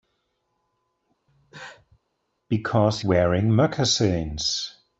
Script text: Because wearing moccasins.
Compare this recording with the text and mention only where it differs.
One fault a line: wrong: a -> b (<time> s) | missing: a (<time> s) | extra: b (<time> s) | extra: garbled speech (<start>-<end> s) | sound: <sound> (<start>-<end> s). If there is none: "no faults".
sound: cough (1.3-2.0 s)